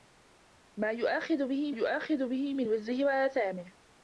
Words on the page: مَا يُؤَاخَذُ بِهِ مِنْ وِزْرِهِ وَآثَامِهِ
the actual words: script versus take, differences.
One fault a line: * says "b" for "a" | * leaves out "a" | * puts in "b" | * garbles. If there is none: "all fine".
* puts in "يُؤَاخَذُ بِهِ"